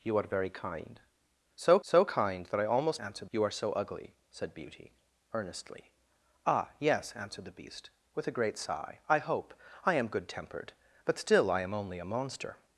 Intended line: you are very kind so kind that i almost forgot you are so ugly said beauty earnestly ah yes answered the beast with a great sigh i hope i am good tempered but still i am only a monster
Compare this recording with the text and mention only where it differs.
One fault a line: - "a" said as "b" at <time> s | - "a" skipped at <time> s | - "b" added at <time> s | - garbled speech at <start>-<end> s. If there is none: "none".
- "so" added at 1.9 s
- "forgot" said as "answered" at 3.0 s